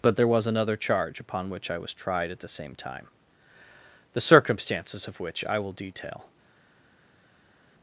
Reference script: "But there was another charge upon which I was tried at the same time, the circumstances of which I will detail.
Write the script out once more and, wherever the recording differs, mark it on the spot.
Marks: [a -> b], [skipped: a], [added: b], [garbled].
"But there was another charge upon which I was tried at the same time, the circumstances of which I will detail.